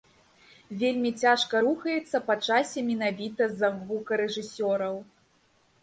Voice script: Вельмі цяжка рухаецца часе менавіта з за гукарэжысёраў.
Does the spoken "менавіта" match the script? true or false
true